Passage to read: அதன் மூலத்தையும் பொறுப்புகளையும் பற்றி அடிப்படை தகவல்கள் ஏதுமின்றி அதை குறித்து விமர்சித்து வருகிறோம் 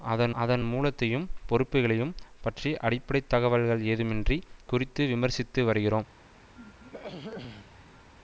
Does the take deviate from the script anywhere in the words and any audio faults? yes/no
yes